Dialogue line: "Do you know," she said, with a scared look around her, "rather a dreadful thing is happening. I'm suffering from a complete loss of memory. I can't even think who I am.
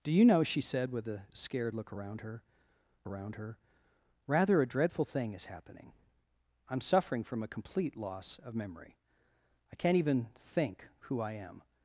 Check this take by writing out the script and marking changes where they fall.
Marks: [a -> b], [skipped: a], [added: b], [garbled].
"Do you know," she said, with a scared look around her, [added: around her] "rather a dreadful thing is happening. I'm suffering from a complete loss of memory. I can't even think who I am.